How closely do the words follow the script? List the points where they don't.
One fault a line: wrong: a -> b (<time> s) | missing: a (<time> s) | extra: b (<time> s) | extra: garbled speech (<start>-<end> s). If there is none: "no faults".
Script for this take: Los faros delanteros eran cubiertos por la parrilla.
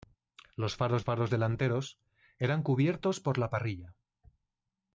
extra: faros (1.0 s)